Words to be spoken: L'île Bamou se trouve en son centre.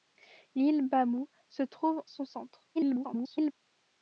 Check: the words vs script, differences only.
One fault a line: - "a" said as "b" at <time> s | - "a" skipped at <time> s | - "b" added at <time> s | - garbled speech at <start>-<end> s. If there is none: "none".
- "en" skipped at 2.0 s
- garbled speech at 2.7-3.5 s